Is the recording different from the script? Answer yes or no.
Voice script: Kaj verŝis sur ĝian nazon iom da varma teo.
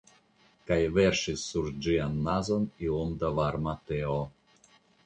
no